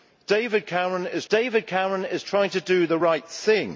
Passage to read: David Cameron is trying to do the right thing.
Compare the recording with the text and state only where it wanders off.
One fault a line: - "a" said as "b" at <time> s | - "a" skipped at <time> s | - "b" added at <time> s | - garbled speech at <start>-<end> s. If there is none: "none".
- "david Cameron is" added at 1.3 s